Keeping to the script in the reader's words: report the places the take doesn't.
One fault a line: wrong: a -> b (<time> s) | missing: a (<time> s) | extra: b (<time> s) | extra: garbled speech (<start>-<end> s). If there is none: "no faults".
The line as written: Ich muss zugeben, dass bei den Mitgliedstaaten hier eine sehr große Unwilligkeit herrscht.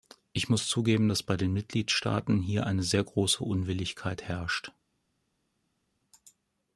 no faults